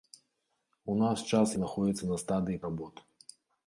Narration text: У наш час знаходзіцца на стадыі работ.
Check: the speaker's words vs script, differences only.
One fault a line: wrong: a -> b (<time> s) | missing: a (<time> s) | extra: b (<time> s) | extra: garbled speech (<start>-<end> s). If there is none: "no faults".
no faults